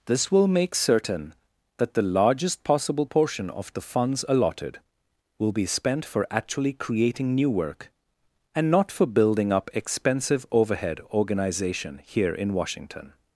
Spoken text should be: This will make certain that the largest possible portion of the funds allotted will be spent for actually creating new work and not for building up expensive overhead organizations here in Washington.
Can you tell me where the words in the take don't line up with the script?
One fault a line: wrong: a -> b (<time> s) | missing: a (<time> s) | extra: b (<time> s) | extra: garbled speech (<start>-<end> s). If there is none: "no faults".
wrong: organizations -> organization (11.1 s)